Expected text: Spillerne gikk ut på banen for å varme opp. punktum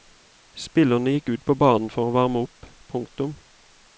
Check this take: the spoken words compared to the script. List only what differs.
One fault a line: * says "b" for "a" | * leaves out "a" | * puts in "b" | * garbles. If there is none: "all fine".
all fine